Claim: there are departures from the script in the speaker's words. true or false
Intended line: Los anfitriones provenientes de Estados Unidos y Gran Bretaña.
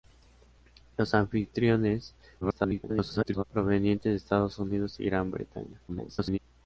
true